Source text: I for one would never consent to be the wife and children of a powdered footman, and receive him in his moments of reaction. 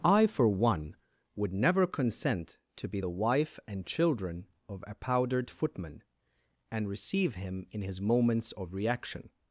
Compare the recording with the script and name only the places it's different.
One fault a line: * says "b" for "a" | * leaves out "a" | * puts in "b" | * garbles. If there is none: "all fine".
all fine